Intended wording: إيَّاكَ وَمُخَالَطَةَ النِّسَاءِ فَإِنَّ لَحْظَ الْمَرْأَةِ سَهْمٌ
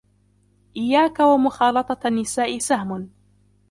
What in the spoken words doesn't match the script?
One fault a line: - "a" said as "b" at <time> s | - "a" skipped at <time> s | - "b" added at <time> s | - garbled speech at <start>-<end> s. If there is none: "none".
- "فَإِنَّ لَحْظَ الْمَرْأَةِ" skipped at 2.6 s